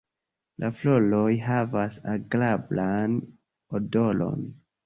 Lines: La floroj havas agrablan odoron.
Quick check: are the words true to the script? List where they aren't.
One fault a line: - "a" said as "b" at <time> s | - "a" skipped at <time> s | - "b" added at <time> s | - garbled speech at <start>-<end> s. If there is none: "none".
none